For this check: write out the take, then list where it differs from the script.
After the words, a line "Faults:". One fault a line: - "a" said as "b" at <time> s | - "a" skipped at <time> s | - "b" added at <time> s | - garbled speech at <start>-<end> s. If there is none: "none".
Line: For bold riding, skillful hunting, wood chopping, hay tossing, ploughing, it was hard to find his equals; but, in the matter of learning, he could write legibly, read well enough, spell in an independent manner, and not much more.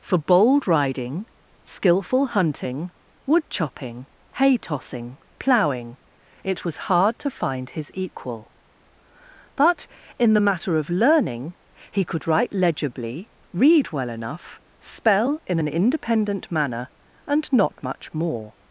For bold riding, skillful hunting, wood chopping, hay tossing, ploughing, it was hard to find his equal; but, in the matter of learning, he could write legibly, read well enough, spell in an independent manner, and not much more.
Faults:
- "equals" said as "equal" at 7.9 s